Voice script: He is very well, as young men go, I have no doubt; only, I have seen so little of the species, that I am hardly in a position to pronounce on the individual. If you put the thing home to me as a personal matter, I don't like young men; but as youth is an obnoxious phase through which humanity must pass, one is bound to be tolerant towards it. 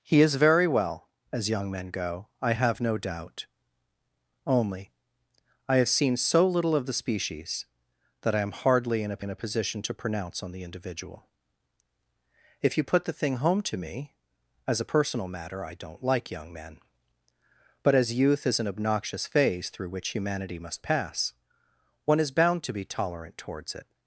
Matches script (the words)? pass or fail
fail